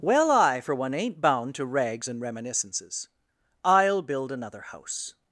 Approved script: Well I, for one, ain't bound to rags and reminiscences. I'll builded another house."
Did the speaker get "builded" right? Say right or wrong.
wrong